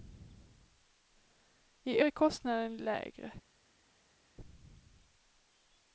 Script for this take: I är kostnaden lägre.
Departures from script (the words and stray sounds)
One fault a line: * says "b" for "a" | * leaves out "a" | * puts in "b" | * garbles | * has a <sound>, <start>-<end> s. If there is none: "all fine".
all fine